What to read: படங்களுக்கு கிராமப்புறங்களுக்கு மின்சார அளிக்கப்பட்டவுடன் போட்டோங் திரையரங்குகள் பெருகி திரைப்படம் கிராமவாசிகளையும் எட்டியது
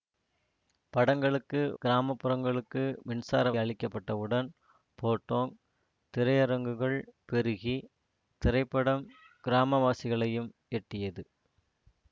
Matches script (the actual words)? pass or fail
pass